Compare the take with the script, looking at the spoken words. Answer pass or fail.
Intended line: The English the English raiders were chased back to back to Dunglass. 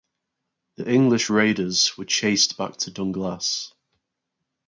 fail